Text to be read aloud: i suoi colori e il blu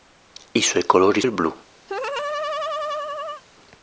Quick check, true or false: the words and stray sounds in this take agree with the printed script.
false